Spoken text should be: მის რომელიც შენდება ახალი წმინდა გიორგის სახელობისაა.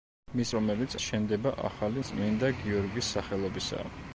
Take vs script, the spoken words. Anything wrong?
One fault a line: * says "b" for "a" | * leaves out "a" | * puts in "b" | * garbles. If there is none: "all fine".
all fine